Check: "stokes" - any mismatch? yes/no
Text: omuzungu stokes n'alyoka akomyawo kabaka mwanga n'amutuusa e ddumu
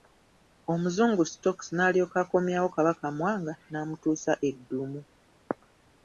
no